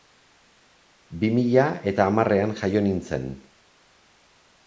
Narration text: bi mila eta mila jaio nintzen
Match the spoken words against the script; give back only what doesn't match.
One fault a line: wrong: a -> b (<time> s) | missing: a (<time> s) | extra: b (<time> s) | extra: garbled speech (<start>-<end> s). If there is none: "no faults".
wrong: mila -> hamarrean (2.1 s)